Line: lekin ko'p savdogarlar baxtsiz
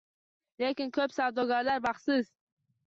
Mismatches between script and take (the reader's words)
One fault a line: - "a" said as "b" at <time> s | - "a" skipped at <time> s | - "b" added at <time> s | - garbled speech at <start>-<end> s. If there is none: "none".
none